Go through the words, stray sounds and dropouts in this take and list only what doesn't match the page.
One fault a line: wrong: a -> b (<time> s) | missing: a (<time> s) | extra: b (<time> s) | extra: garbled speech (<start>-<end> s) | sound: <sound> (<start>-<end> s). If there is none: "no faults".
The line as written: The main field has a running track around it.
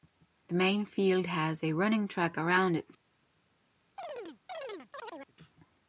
sound: chirp (4.0-5.3 s)